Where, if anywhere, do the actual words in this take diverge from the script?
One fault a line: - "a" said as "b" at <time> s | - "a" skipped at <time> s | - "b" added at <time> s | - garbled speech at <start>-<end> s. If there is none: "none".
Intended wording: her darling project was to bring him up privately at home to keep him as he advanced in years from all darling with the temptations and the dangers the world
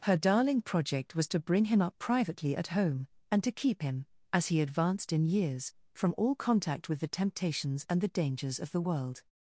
- "and" added at 3.3 s
- "darling" said as "contact" at 6.3 s
- "of" added at 8.6 s